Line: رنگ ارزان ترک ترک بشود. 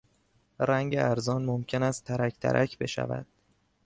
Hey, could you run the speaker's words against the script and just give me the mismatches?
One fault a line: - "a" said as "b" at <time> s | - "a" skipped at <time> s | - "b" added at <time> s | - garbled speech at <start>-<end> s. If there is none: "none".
- "ممکن است" added at 1.4 s